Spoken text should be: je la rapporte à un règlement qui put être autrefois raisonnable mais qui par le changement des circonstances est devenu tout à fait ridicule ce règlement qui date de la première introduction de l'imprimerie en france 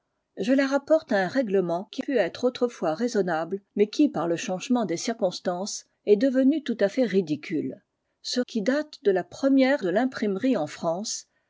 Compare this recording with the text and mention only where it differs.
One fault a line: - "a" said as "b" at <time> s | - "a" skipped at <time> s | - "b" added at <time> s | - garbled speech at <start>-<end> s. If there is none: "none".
- "règlement" skipped at 8.4 s
- "introduction" skipped at 9.8 s